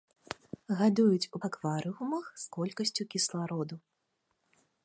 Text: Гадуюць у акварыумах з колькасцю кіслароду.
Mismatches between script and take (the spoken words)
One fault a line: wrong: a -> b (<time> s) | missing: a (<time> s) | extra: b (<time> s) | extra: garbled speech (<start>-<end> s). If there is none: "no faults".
no faults